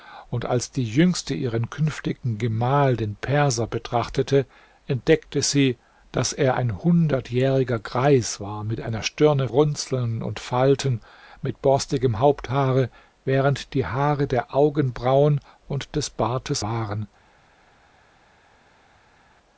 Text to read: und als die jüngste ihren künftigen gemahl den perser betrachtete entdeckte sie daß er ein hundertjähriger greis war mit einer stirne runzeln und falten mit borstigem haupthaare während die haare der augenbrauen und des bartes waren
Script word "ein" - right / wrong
right